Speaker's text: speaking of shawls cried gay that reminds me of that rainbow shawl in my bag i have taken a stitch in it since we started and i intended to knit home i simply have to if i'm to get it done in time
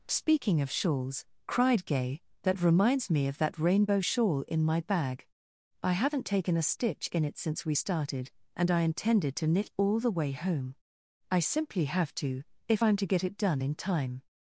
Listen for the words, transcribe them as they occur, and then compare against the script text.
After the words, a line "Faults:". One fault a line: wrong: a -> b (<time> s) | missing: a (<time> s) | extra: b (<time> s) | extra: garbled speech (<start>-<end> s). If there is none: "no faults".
speaking of shawls cried gay that reminds me of that rainbow shawl in my bag i haven't taken a stitch in it since we started and i intended to knit all the way home i simply have to if i'm to get it done in time
Faults:
wrong: have -> haven't (5.9 s)
extra: all the way (9.8 s)